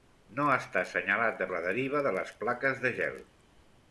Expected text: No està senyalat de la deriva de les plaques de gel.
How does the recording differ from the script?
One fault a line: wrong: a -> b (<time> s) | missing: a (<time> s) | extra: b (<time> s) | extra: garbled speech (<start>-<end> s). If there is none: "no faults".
no faults